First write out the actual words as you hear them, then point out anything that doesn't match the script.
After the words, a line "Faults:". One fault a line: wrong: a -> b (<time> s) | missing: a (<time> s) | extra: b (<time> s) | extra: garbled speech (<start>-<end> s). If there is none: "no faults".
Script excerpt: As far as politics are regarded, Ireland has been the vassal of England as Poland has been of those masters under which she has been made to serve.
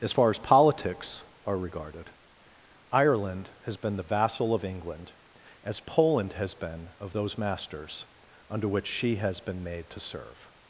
As far as politics are regarded, Ireland has been the vassal of England as Poland has been of those masters under which she has been made to serve.
Faults:
no faults